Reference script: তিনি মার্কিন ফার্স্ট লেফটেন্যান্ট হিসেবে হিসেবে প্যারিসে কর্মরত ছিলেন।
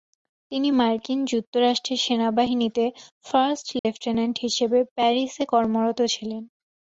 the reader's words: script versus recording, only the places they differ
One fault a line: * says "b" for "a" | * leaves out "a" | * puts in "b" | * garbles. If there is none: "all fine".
* puts in "যুক্তরাষ্ট্রের সেনাবাহিনীতে"
* leaves out "হিসেবে"